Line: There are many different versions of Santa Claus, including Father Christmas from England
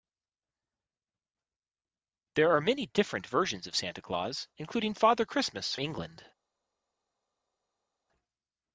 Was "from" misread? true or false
true